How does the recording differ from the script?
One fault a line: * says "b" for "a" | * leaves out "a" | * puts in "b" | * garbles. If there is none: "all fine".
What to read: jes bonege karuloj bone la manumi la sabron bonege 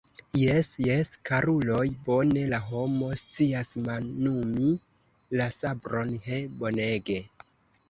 * says "jes" for "bonege"
* puts in "homo scias"
* puts in "he"